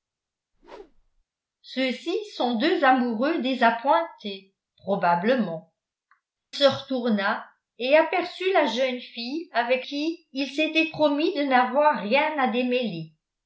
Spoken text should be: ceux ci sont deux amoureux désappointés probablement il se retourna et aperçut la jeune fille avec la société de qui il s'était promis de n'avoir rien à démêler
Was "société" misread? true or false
true